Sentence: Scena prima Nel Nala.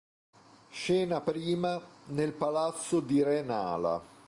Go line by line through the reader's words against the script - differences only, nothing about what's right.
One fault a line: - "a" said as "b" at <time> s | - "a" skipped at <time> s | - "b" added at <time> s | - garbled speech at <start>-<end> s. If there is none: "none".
- "palazzo di re" added at 2.3 s